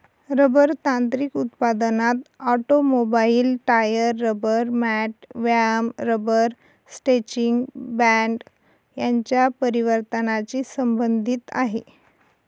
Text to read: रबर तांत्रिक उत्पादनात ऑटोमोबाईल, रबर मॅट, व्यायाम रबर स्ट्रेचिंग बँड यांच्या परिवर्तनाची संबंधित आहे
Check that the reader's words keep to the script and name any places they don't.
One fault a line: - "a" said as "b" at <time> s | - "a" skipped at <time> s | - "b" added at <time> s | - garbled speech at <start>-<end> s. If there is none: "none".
- "टायर" added at 3.7 s